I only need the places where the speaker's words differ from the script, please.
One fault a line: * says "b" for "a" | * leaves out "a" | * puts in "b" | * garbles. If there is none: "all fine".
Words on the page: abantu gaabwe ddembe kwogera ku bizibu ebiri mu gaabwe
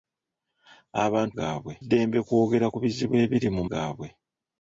all fine